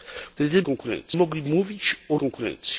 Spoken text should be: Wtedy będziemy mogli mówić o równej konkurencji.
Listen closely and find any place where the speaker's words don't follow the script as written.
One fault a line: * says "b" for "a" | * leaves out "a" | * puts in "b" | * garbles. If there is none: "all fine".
* says "konkurencji" for "będziemy"
* leaves out "równej"